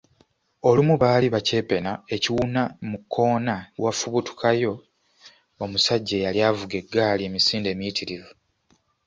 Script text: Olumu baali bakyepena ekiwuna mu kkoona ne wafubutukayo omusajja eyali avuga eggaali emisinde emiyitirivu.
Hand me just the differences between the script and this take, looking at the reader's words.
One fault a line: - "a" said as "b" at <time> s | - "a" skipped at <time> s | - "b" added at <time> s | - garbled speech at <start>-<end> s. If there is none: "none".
- "ne" skipped at 3.5 s